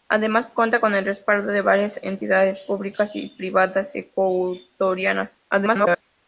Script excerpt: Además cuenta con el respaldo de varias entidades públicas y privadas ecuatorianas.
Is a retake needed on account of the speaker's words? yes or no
yes